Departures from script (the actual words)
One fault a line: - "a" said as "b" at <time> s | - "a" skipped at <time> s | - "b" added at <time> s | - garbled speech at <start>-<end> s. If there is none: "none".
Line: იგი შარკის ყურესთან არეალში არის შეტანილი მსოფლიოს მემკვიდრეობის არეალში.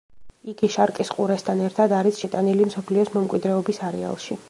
- "არეალში" said as "ერთად" at 1.7 s